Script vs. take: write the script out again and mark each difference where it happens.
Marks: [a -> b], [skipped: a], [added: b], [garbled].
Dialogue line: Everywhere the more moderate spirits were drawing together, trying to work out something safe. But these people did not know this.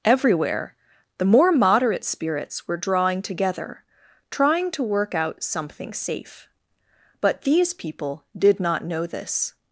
Everywhere the more moderate spirits were drawing together, trying to work out something safe. But these people did not know this.